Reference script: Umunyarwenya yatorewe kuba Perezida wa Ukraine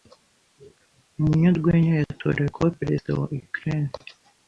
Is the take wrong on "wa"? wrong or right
right